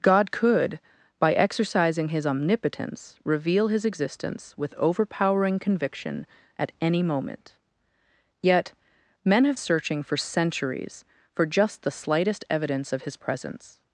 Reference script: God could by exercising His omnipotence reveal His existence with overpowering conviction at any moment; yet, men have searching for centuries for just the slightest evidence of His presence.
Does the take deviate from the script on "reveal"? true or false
false